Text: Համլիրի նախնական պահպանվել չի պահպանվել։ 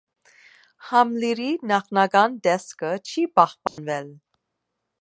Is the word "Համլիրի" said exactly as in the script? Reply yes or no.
yes